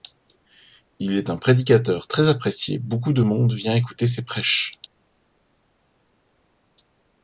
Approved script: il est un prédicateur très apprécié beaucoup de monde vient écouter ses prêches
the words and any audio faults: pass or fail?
pass